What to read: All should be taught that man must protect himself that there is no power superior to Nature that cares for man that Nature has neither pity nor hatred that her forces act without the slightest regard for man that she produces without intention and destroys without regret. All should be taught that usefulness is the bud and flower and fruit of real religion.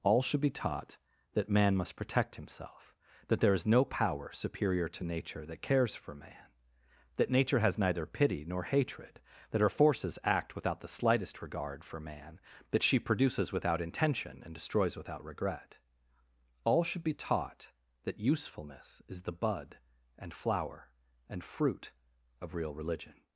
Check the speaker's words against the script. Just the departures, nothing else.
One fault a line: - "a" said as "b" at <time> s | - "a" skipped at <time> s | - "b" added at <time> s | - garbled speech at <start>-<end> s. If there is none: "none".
none